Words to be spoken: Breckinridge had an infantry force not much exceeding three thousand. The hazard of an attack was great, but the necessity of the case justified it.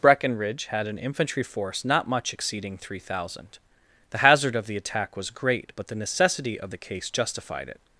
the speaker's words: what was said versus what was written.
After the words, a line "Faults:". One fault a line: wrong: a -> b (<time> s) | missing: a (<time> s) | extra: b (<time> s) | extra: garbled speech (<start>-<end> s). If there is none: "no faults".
Breckinridge had an infantry force not much exceeding three thousand. The hazard of the attack was great, but the necessity of the case justified it.
Faults:
wrong: an -> the (4.7 s)